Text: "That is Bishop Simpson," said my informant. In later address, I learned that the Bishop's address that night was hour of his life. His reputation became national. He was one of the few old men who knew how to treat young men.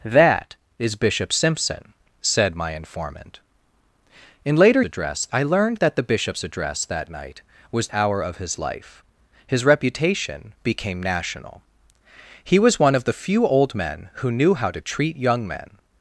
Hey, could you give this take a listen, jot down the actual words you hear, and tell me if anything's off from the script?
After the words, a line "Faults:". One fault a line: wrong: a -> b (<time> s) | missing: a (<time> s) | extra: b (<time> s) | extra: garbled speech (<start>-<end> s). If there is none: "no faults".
"That is Bishop Simpson," said my informant. In later address, I learned that the Bishop's address that night was hour of his life. His reputation became national. He was one of the few old men who knew how to treat young men.
Faults:
no faults